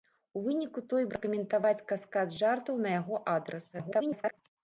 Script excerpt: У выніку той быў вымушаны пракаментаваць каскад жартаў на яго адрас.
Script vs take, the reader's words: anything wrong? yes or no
yes